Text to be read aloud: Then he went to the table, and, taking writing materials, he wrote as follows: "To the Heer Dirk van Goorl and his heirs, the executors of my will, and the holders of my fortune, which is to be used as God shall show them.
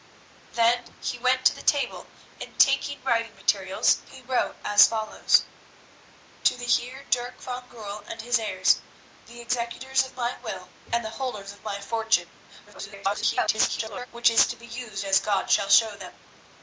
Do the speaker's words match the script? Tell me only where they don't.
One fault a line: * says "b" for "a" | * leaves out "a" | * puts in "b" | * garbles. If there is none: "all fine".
* garbles